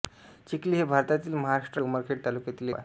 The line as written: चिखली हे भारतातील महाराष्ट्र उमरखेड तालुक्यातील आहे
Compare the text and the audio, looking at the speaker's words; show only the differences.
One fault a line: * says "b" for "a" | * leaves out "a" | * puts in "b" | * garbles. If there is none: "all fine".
all fine